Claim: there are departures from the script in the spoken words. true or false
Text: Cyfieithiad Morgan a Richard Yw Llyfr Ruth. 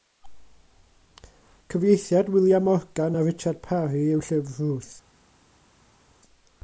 true